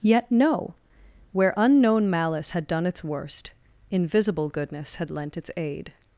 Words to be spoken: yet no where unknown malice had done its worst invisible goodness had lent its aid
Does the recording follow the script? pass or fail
pass